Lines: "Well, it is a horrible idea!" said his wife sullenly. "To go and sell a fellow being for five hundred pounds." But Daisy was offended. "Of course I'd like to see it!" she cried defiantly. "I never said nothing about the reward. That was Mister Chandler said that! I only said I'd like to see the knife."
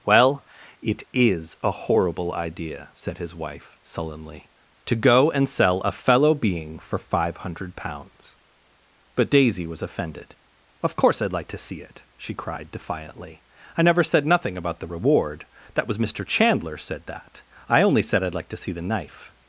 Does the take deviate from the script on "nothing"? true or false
false